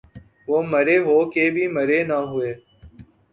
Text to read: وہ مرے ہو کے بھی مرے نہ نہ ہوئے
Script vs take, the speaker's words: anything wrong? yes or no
yes